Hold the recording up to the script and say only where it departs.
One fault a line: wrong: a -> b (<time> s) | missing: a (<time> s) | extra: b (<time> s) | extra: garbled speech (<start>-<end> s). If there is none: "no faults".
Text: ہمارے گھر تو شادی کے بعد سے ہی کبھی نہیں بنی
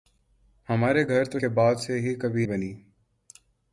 missing: شادی (1.4 s)
missing: نہیں (2.5 s)